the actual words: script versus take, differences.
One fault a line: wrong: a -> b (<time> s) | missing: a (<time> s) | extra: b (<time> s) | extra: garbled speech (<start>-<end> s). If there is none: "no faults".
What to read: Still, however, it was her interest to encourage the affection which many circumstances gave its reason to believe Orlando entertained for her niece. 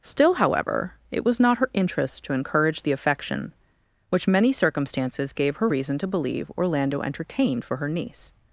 extra: not (1.4 s)
wrong: its -> her (5.5 s)